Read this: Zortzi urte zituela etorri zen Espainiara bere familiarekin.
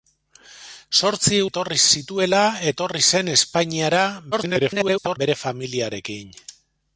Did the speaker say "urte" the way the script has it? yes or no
no